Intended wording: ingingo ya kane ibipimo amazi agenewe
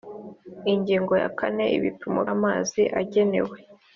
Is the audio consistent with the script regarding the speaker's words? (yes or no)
yes